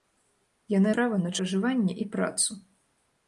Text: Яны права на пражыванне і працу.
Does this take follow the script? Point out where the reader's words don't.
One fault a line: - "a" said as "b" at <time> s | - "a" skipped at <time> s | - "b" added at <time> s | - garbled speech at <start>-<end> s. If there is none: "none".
none